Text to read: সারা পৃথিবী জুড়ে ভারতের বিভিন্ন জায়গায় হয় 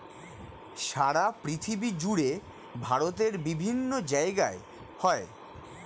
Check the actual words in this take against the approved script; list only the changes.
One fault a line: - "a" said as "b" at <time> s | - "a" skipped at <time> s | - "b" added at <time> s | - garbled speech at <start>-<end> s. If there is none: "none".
none